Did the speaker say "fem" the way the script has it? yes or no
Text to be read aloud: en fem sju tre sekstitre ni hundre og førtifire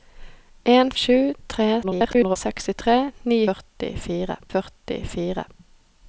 no